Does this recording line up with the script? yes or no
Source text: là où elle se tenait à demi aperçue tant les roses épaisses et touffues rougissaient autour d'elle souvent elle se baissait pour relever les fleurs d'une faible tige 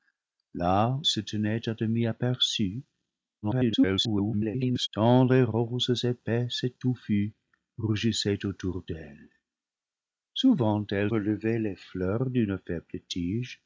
no